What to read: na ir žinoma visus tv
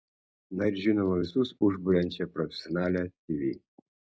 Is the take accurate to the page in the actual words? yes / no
no